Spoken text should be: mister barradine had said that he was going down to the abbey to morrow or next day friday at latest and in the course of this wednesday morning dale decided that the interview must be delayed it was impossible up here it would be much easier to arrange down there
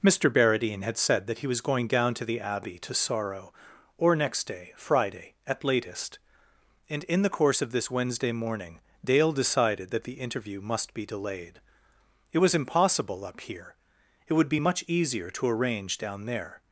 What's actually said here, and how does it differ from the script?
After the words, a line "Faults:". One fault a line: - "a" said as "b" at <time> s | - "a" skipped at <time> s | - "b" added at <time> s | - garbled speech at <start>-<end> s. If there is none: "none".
mister barradine had said that he was going down to the abbey to sorrow or next day friday at latest and in the course of this wednesday morning dale decided that the interview must be delayed it was impossible up here it would be much easier to arrange down there
Faults:
- "morrow" said as "sorrow" at 2.9 s